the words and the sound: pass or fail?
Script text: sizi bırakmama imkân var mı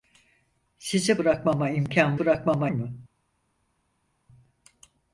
fail